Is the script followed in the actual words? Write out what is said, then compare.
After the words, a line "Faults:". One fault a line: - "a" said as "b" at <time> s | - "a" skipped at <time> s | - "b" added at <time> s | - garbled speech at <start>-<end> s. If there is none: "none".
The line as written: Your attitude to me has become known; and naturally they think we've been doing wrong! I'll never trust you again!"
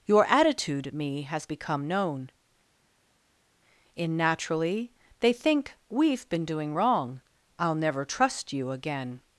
Your attitude me has become known; in naturally they think we've been doing wrong! I'll never trust you again!"
Faults:
- "to" skipped at 0.9 s
- "and" said as "in" at 3.9 s